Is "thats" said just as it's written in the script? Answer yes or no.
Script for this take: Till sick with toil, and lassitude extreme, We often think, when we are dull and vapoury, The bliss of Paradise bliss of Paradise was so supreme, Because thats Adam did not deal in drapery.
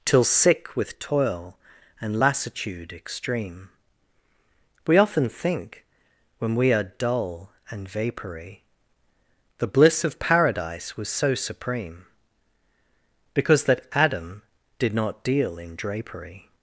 no